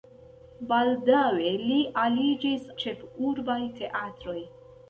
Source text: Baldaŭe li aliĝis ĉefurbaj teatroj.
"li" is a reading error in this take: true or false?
false